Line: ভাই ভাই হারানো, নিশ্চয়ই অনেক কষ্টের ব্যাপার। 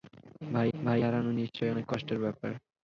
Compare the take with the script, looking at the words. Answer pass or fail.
pass